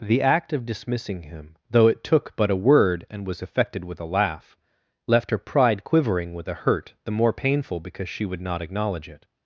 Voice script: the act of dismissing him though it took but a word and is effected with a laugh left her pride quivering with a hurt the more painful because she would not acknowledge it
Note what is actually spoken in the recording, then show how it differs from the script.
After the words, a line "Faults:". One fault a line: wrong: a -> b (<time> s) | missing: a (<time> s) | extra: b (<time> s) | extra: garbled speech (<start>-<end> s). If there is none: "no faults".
the act of dismissing him though it took but a word and was effected with a laugh left her pride quivering with a hurt the more painful because she would not acknowledge it
Faults:
wrong: is -> was (3.3 s)